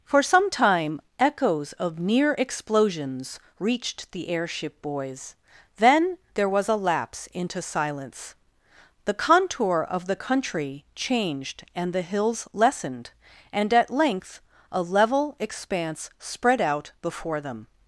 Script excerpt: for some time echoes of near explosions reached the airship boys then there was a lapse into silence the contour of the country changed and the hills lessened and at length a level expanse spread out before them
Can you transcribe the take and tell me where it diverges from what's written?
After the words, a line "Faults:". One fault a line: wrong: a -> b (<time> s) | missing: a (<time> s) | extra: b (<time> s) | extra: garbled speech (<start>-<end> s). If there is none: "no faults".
for some time echoes of near explosions reached the airship boys then there was a lapse into silence the contour of the country changed and the hills lessened and at length a level expanse spread out before them
Faults:
no faults